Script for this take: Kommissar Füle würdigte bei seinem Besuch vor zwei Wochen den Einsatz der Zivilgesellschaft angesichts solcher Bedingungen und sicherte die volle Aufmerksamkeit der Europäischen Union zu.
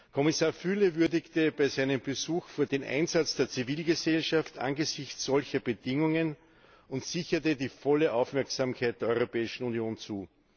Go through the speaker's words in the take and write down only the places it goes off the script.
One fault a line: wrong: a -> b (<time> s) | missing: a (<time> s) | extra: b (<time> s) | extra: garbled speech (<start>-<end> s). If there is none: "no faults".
missing: zwei Wochen (2.7 s)